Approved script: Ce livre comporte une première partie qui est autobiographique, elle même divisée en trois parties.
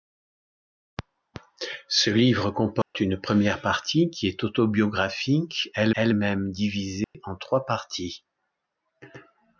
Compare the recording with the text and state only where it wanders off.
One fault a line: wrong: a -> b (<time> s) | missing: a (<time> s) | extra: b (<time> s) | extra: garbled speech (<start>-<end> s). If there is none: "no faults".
extra: elle (5.9 s)